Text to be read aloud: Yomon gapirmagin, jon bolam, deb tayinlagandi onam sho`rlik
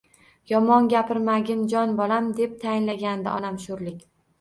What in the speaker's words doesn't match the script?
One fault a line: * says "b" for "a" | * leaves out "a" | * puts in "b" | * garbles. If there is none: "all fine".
all fine